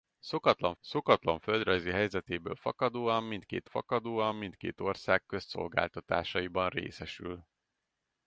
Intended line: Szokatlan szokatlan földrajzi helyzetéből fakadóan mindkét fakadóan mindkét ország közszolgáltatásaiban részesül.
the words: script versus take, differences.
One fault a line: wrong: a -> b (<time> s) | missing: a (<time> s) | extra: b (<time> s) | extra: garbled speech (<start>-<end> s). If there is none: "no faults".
no faults